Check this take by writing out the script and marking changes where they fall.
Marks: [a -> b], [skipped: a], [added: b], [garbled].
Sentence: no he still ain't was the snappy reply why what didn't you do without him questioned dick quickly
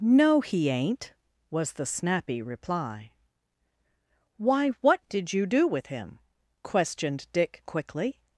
no he [skipped: still] ain't was the snappy reply why what [didn't -> did] you do [without -> with] him questioned dick quickly